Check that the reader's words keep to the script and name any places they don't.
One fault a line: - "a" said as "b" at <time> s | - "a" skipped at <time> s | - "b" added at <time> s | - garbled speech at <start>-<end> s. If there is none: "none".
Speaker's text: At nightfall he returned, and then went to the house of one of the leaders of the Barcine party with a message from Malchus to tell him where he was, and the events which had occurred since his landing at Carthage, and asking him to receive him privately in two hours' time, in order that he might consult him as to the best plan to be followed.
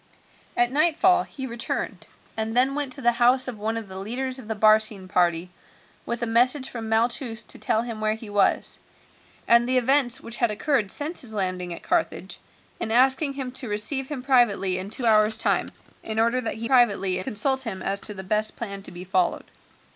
- "might" said as "privately" at 16.6 s